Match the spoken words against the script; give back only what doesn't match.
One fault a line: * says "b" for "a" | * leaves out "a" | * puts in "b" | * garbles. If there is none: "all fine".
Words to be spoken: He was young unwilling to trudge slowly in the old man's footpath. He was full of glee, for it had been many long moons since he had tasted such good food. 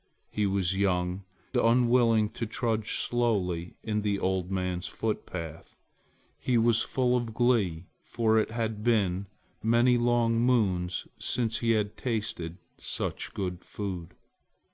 all fine